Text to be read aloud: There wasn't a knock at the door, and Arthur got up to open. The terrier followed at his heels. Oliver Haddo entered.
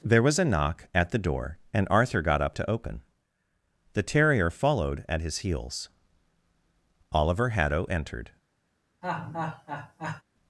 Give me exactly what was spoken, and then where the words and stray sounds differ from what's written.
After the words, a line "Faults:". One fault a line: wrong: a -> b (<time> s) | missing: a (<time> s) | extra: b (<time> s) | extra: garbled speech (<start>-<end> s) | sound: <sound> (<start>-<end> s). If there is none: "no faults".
There was a knock at the door, and Arthur got up to open. The terrier followed at his heels. Oliver Haddo entered.
Faults:
wrong: wasn't -> was (0.2 s)
sound: laugh (9.0-10.2 s)